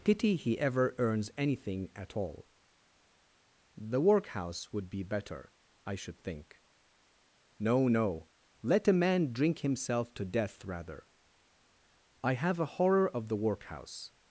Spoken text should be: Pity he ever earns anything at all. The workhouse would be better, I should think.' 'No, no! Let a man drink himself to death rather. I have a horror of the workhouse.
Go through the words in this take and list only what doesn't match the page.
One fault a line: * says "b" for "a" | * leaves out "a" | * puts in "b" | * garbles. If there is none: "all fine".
all fine